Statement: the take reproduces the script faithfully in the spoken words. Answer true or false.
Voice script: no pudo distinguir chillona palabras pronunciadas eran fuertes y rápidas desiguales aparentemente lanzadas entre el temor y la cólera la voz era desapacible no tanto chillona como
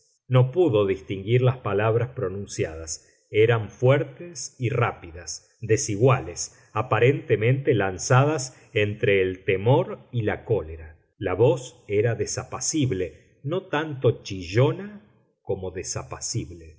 false